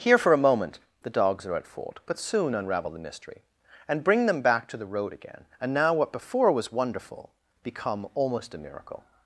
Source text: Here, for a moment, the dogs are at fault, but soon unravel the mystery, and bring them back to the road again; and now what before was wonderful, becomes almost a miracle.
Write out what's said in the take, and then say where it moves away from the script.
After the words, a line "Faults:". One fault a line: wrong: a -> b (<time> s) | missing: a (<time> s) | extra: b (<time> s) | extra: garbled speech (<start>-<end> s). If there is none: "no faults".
Here, for a moment, the dogs are at fault, but soon unravel the mystery, and bring them back to the road again; and now what before was wonderful, become almost a miracle.
Faults:
wrong: becomes -> become (7.6 s)